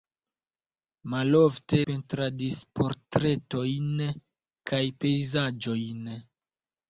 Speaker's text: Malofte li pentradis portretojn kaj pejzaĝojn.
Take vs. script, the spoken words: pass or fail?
fail